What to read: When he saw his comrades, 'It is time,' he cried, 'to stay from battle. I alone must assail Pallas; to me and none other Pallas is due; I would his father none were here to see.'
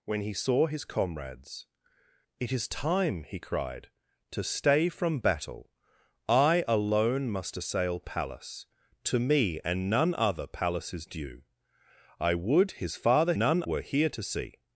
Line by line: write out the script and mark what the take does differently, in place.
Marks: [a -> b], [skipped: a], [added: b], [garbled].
When he saw his comrades, 'It is time,' he cried, 'to stay from battle. I alone must assail Pallas; to me and none other Pallas is due; I would his father none were here to see.'